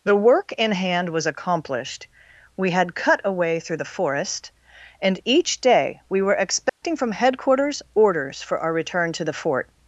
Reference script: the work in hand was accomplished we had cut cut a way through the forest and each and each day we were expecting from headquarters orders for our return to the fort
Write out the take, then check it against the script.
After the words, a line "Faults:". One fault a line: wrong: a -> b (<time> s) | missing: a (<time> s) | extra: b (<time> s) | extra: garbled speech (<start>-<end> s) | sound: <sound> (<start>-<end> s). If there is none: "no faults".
the work in hand was accomplished we had cut a way through the forest and each day we were expecting from headquarters orders for our return to the fort
Faults:
missing: cut (3.2 s)
missing: and each (5.6 s)
sound: dropout (6.7-6.8 s)